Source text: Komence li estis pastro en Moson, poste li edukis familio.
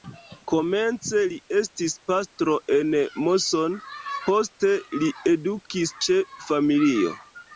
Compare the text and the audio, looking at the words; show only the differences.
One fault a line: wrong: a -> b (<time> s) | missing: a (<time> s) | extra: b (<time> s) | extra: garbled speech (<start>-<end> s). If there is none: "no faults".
extra: ĉe (6.1 s)